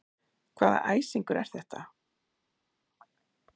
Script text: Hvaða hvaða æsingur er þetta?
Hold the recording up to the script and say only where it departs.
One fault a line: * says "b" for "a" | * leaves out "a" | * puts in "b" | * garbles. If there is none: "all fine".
* leaves out "hvaða"